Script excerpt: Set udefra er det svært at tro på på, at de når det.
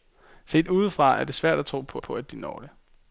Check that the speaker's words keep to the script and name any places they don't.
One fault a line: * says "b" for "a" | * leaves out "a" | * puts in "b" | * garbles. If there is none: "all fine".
all fine